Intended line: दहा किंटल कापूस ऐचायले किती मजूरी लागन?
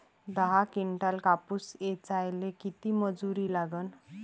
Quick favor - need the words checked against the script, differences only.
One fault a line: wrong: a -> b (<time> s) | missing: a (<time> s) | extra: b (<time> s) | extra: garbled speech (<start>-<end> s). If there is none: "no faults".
no faults